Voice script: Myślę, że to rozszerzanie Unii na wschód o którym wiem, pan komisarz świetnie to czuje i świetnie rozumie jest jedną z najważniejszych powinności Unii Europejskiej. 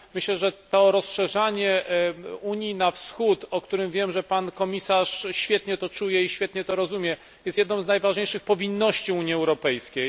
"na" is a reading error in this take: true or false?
false